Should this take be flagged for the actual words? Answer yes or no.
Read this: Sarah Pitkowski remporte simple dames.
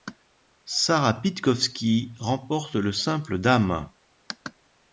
yes